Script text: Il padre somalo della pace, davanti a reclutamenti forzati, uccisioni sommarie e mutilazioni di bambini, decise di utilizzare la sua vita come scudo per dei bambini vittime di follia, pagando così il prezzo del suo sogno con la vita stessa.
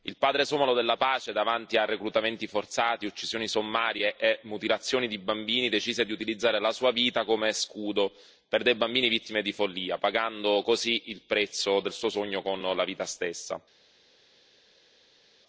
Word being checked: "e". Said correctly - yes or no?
yes